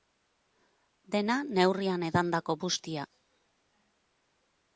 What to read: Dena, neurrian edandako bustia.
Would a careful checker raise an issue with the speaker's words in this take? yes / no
no